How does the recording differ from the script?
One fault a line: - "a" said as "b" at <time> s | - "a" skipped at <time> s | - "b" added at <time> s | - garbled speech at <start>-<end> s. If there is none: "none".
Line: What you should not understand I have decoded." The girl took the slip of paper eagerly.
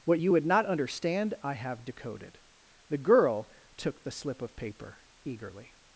- "should" said as "would" at 0.3 s